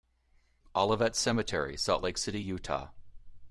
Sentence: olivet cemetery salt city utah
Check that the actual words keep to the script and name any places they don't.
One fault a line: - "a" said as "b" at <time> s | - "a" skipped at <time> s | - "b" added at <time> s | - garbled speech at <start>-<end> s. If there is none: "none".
- "lake" added at 2.0 s